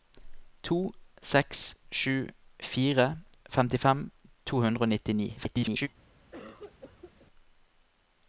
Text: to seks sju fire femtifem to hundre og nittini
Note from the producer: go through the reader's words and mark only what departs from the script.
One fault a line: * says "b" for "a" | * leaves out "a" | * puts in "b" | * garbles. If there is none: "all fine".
* garbles